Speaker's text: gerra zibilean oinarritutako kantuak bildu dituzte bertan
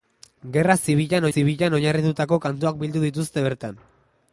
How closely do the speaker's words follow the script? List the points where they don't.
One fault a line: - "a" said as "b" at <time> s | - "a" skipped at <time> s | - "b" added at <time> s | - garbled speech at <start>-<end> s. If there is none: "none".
- "zibilean" added at 1.3 s